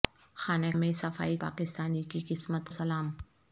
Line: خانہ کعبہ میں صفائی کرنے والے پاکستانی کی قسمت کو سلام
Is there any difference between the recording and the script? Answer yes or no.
yes